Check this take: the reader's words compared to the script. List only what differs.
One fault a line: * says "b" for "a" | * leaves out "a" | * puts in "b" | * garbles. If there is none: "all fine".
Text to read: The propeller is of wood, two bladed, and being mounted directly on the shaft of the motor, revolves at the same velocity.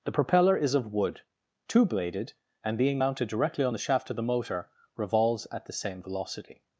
all fine